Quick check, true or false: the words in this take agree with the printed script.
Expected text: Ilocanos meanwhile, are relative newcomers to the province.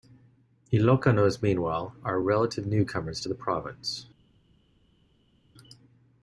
true